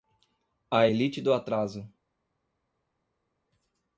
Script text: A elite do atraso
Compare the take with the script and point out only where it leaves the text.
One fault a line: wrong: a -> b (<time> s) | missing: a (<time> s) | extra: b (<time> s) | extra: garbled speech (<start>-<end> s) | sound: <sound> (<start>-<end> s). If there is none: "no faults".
no faults